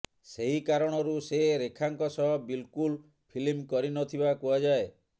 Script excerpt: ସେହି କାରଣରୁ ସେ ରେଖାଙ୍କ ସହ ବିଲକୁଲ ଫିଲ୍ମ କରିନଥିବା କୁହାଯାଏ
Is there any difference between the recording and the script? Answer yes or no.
no